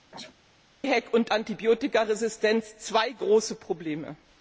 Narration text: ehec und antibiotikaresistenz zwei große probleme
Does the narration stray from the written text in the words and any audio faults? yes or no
yes